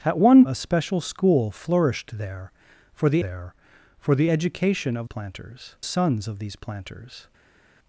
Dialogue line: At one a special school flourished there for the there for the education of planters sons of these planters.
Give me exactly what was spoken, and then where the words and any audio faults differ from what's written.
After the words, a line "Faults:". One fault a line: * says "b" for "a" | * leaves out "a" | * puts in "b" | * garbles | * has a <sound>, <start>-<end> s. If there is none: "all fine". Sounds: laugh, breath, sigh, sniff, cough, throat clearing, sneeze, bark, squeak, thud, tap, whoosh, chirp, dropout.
At one a special school flourished there for the there for the education of planters sons of these planters.
Faults:
all fine